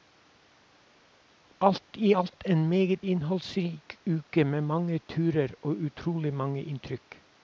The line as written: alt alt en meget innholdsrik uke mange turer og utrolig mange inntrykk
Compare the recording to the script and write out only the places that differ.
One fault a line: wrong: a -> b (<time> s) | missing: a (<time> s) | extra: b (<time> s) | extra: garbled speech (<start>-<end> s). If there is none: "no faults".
extra: i (2.0 s)
extra: med (4.4 s)